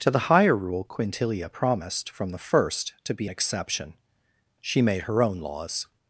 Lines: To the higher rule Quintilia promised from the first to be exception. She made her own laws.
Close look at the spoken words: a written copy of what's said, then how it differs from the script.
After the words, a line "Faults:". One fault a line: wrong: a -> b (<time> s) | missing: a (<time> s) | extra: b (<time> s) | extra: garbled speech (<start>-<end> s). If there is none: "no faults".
To the higher rule Quintilia promised from the first to be exception. She made her own laws.
Faults:
no faults